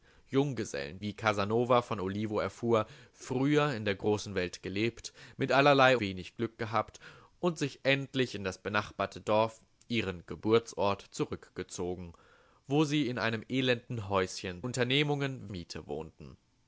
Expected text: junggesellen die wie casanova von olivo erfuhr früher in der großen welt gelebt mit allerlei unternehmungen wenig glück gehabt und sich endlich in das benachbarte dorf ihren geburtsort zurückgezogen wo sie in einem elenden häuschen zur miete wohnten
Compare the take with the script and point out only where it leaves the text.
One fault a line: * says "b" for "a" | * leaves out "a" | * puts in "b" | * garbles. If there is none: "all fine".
* leaves out "die"
* leaves out "unternehmungen"
* says "unternehmungen" for "zur"